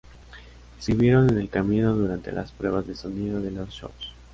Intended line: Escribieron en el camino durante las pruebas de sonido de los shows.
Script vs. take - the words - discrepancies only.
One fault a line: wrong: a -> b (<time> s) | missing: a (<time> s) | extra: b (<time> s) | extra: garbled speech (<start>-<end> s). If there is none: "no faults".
no faults